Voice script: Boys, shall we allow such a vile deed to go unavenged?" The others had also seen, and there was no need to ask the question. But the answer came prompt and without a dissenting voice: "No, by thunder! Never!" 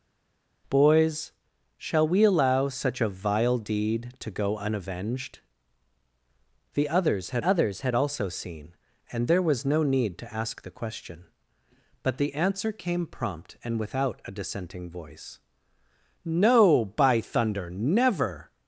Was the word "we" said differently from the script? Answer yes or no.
no